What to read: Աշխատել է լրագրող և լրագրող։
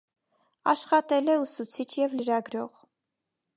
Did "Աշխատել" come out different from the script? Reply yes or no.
no